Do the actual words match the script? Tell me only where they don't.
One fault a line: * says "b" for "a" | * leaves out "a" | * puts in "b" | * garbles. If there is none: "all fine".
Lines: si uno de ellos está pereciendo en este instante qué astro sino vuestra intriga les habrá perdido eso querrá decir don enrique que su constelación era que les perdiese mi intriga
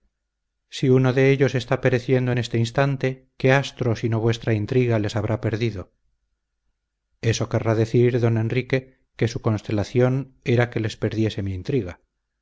all fine